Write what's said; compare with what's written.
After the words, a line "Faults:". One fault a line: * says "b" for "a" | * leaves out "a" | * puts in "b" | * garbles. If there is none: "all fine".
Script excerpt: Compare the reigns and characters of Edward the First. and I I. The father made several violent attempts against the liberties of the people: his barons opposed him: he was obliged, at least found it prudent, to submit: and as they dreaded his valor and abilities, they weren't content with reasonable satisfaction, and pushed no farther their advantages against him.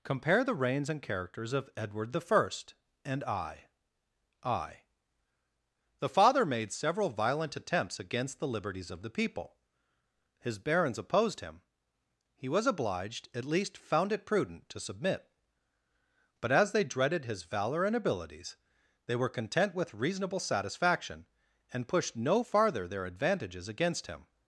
Compare the reigns and characters of Edward the First. and I I. The father made several violent attempts against the liberties of the people: his barons opposed him: he was obliged, at least found it prudent, to submit: but as they dreaded his valor and abilities, they were content with reasonable satisfaction, and pushed no farther their advantages against him.
Faults:
* says "but" for "and"
* says "were" for "weren't"